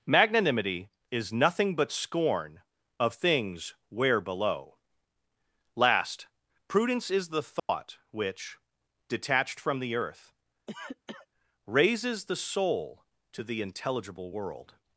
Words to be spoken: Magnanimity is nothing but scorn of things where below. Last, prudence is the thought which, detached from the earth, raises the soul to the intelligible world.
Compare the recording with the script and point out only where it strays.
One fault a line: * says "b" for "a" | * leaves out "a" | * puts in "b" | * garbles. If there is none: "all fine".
all fine